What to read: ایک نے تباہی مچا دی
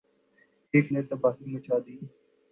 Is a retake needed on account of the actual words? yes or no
no